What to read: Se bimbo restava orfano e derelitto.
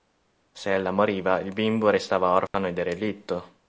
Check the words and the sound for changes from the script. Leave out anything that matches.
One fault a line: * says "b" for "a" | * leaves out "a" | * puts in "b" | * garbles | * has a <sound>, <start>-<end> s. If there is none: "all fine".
* puts in "ella moriva il"
* has a dropout, 2.5-2.5 s